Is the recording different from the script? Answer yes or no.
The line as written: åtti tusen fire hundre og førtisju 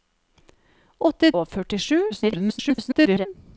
yes